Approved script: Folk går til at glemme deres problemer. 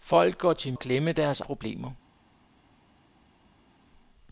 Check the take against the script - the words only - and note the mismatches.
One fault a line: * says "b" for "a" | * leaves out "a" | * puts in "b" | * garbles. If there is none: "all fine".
all fine